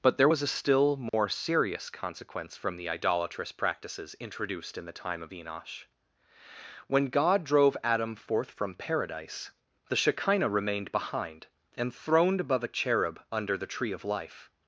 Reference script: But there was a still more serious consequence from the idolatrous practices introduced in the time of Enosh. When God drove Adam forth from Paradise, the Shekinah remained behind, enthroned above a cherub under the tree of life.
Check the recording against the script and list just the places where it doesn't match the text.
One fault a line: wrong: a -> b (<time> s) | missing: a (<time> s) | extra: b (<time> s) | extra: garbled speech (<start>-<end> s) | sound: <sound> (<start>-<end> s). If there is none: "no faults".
sound: dropout (1.1-1.1 s)